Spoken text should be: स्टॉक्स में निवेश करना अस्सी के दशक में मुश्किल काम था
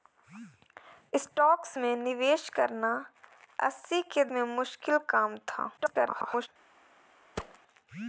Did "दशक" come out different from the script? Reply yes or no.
yes